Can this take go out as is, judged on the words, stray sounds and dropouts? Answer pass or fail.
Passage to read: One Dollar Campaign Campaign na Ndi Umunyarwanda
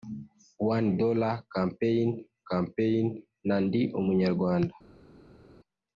pass